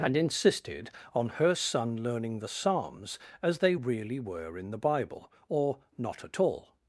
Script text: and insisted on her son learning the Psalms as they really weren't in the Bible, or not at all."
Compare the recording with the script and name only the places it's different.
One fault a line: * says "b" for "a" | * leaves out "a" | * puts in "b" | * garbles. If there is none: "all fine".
* says "were" for "weren't"